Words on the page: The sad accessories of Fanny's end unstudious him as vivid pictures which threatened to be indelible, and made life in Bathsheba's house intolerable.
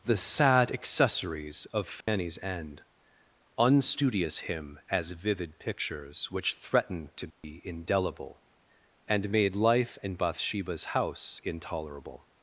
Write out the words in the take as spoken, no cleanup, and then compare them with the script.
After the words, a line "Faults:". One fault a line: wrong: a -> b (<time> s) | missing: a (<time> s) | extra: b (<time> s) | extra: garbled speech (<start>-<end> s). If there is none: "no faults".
The sad accessories of Fanny's end unstudious him as vivid pictures which threatened to be indelible, and made life in Bathsheba's house intolerable.
Faults:
no faults